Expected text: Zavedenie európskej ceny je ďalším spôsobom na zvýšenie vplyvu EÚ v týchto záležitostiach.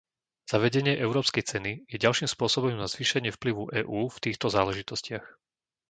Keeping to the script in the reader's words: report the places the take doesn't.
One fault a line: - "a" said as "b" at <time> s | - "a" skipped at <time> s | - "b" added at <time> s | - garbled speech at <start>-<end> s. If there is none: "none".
none